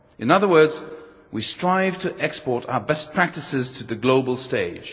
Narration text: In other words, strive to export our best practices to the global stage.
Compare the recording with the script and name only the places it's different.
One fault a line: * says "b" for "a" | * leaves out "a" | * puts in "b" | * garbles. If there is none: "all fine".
* puts in "we"